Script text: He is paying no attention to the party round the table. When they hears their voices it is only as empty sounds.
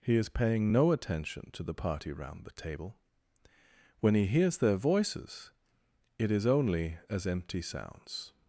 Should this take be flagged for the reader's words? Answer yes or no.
yes